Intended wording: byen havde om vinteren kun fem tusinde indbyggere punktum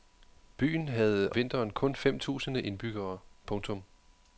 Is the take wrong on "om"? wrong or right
wrong